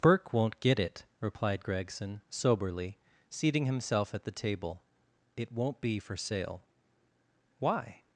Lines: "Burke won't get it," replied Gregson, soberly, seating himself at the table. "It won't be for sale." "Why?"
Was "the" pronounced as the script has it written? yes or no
yes